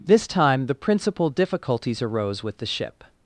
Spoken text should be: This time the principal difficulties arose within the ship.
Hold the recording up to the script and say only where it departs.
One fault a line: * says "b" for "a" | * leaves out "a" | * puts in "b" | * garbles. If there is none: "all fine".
* says "with" for "within"